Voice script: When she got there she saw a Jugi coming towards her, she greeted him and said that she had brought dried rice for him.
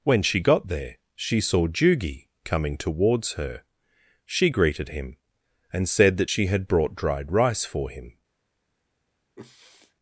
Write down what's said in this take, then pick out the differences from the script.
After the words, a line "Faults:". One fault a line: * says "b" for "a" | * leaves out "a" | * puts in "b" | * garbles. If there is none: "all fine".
When she got there she saw Jugi coming towards her, she greeted him and said that she had brought dried rice for him.
Faults:
* leaves out "a"